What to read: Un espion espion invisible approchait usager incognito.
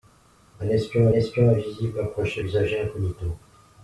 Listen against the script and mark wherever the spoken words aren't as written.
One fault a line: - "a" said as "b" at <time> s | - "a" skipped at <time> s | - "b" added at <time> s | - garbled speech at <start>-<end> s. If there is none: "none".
none